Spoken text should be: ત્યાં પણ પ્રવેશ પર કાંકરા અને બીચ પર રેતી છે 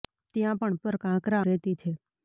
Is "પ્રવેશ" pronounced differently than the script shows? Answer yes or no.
yes